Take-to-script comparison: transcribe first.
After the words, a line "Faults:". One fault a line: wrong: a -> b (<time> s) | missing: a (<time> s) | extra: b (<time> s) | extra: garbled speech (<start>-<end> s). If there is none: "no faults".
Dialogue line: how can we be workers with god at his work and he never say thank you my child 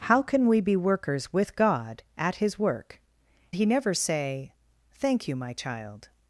how can we be workers with god at his work he never say thank you my child
Faults:
missing: and (3.0 s)